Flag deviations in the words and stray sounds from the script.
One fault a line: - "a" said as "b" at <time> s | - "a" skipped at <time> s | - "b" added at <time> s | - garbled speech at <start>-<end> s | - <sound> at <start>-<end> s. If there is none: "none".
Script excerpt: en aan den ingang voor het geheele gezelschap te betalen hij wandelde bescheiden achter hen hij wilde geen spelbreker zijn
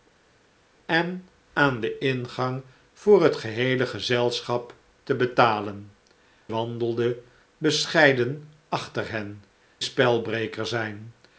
- "hij" skipped at 5.9 s
- "hij wilde geen" skipped at 9.4 s